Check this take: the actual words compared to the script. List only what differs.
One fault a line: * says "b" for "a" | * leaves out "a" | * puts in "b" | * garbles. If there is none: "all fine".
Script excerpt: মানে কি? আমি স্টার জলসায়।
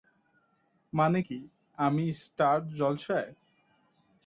all fine